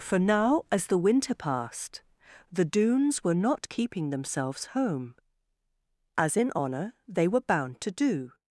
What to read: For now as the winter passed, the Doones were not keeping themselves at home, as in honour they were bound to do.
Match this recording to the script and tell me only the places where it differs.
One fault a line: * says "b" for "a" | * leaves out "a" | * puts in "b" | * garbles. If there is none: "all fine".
* leaves out "at"